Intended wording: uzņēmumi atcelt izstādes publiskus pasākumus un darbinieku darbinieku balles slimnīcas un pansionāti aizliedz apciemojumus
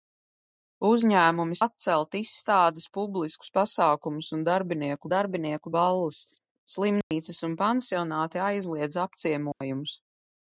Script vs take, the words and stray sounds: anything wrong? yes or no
yes